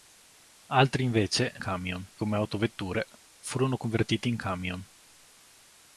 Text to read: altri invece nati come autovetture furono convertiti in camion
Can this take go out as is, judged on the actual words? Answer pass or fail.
fail